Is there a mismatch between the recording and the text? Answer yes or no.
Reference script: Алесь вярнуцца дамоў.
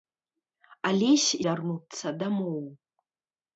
no